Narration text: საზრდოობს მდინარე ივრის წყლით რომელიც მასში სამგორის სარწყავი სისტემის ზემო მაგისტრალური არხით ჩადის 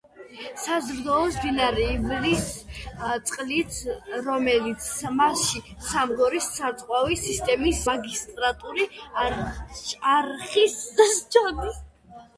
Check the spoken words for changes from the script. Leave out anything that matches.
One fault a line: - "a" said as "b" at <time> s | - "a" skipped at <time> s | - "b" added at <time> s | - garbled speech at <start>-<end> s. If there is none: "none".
- "ზემო" skipped at 7.8 s